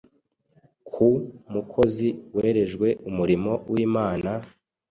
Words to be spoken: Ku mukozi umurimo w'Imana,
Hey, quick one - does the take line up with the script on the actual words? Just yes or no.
no